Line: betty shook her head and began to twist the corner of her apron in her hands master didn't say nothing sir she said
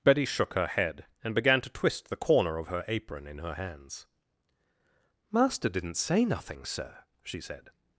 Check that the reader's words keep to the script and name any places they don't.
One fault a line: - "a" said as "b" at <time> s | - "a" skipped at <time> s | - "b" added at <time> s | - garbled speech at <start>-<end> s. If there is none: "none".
none